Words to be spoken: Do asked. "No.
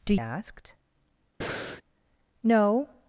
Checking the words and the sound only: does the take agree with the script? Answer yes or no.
no